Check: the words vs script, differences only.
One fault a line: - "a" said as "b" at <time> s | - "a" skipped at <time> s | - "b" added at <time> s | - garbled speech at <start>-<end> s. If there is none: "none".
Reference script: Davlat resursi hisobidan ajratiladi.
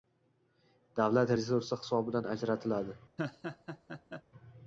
none